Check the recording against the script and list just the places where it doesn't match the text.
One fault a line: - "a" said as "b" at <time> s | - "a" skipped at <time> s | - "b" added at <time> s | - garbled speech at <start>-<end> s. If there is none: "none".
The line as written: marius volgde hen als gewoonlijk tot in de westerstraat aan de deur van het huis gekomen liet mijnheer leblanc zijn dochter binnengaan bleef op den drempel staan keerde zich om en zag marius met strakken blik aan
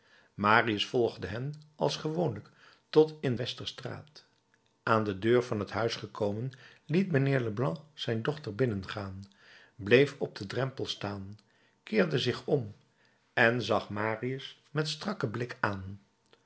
- "de" skipped at 3.4 s